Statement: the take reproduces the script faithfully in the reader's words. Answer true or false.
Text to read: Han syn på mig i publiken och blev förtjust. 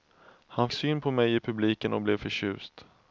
true